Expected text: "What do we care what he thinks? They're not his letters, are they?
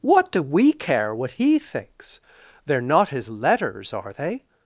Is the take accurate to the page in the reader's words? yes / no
yes